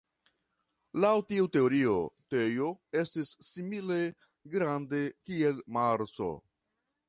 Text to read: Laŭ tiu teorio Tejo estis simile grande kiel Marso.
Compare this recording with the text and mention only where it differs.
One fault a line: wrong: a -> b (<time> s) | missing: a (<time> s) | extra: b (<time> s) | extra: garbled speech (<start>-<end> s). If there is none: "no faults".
no faults